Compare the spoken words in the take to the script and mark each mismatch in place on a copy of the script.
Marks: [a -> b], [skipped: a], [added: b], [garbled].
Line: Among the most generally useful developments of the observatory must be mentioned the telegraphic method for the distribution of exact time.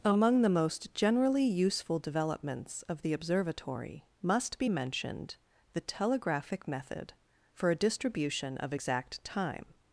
Among the most generally useful developments of the observatory must be mentioned the telegraphic method for [the -> a] distribution of exact time.